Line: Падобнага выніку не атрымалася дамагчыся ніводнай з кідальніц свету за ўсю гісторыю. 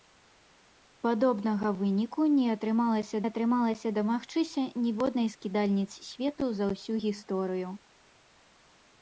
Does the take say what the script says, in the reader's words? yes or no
no